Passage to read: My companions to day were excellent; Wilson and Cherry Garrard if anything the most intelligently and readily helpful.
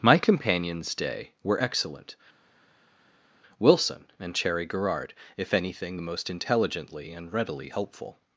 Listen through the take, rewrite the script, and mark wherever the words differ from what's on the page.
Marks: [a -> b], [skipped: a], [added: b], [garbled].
My companions [skipped: to] day were excellent; Wilson and Cherry Garrard if anything the most intelligently and readily helpful.